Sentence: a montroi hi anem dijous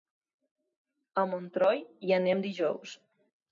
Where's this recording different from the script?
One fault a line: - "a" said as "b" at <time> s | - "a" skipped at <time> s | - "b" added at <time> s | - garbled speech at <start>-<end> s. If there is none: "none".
none